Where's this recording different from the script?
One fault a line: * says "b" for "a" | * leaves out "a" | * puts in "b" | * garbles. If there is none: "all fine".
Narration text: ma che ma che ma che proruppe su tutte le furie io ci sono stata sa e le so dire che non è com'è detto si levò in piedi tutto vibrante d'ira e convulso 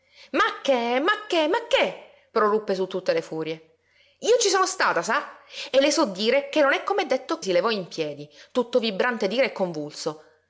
all fine